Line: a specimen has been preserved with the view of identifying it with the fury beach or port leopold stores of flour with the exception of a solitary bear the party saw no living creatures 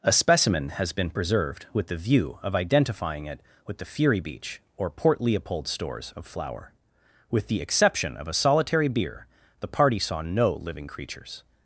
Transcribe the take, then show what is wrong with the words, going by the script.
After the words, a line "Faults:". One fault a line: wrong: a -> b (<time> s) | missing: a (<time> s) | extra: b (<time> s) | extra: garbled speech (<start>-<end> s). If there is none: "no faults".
a specimen has been preserved with the view of identifying it with the fury beach or port leopold stores of flour with the exception of a solitary beer the party saw no living creatures
Faults:
wrong: bear -> beer (8.9 s)